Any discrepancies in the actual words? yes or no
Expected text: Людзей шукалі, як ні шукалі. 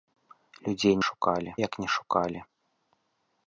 no